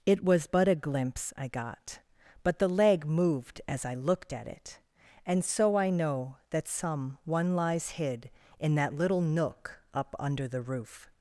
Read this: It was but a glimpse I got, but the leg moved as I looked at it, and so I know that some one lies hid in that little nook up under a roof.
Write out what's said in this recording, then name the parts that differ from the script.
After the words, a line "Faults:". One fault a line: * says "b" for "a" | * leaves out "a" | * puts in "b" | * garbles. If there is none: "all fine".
It was but a glimpse I got, but the leg moved as I looked at it, and so I know that some one lies hid in that little nook up under the roof.
Faults:
* says "the" for "a"